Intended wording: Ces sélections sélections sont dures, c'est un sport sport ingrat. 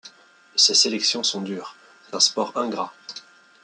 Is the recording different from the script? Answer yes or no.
yes